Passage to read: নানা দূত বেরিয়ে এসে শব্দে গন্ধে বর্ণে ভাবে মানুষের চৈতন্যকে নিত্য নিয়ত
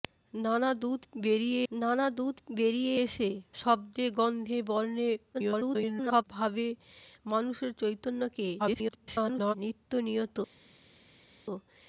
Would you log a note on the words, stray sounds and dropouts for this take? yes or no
yes